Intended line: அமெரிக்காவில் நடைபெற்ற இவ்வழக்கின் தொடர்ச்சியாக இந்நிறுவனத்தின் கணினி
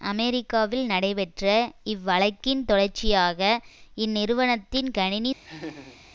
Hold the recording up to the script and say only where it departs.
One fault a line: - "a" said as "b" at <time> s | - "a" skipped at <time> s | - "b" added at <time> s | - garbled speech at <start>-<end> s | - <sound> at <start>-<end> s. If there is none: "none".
- laugh at 5.4-6.0 s